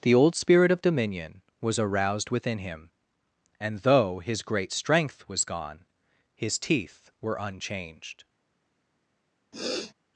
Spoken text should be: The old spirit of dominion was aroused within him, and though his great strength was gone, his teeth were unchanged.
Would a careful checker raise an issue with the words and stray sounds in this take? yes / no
yes